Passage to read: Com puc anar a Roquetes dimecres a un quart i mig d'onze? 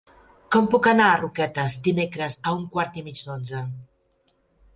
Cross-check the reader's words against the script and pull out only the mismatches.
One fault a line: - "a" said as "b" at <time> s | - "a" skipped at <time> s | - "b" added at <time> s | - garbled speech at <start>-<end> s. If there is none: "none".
none